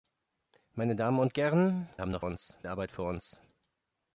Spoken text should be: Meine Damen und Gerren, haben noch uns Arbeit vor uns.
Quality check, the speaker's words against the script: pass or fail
pass